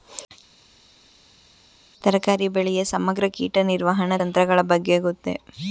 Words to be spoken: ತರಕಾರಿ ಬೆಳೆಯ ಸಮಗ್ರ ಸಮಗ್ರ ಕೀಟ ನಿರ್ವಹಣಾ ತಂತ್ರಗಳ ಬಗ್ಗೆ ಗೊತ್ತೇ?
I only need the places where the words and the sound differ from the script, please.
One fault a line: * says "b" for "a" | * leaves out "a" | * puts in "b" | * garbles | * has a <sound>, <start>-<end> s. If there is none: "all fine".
* leaves out "ಸಮಗ್ರ"